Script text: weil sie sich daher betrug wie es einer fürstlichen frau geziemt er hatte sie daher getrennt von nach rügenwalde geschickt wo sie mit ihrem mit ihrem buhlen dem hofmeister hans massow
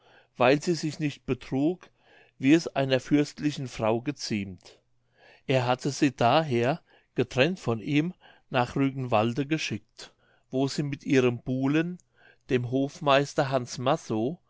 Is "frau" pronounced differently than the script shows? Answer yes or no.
no